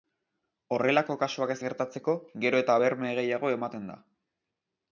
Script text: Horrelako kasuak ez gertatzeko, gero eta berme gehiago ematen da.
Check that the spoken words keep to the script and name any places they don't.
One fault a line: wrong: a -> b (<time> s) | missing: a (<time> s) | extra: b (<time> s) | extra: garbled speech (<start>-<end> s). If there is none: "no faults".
no faults